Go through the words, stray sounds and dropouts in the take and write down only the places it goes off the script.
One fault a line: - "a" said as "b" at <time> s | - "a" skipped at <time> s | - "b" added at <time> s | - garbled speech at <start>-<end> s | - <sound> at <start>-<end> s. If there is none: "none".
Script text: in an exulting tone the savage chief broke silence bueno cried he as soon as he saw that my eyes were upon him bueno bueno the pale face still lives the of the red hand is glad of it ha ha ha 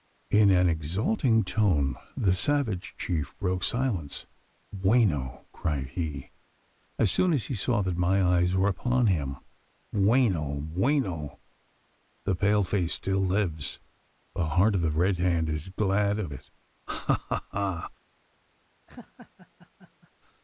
- "heart" added at 14.5 s
- laugh at 18.9-20.1 s